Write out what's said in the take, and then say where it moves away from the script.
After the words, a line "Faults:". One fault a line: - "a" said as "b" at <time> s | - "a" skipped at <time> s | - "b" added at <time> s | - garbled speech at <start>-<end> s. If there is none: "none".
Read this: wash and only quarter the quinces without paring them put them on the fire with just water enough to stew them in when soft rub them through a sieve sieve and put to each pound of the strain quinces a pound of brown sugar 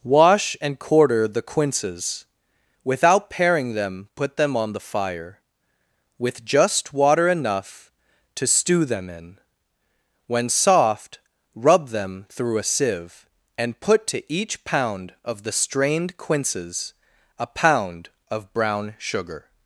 wash and quarter the quinces without paring them put them on the fire with just water enough to stew them in when soft rub them through a sieve and put to each pound of the strained quinces a pound of brown sugar
Faults:
- "only" skipped at 0.8 s
- "sieve" skipped at 13.3 s
- "strain" said as "strained" at 15.5 s